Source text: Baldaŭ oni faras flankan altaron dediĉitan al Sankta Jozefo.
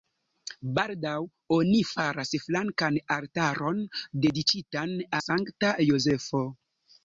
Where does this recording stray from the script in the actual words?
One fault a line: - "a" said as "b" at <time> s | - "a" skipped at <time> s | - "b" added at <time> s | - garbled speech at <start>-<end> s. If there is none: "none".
- "al" skipped at 5.0 s